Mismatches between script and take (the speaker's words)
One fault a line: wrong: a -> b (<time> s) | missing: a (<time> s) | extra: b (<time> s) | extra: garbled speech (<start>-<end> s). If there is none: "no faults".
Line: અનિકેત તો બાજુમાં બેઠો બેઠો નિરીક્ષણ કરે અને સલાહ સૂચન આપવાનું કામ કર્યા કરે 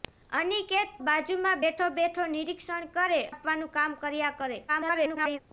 missing: તો (0.9 s)
missing: અને સલાહ સૂચન (3.2 s)
extra: garbled speech (4.7-5.4 s)